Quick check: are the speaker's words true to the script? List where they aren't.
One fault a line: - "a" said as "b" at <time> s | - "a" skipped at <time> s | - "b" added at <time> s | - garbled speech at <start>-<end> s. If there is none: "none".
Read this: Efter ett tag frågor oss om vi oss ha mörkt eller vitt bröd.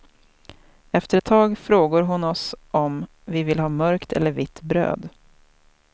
- "hon" added at 2.0 s
- "oss" said as "vill" at 3.4 s